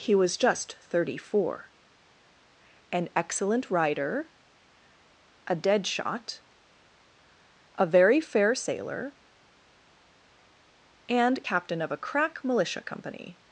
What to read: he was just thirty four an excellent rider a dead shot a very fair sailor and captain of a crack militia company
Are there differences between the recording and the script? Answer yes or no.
no